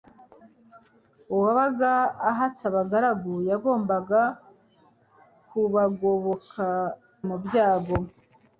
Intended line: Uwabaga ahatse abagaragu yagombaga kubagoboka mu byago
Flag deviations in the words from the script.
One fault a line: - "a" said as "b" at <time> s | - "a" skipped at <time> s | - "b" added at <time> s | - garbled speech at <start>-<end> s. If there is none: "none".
none